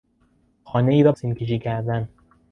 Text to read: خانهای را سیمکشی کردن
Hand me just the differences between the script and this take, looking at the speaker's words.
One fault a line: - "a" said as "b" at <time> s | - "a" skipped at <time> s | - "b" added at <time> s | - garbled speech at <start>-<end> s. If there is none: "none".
none